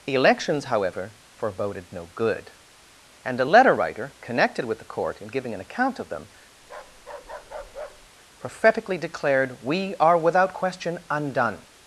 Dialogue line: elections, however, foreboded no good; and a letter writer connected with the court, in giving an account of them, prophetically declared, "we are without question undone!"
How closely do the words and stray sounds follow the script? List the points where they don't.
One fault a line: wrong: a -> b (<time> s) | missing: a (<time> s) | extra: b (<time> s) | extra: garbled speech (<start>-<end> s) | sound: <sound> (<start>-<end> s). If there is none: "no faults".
sound: bark (6.6-8.1 s)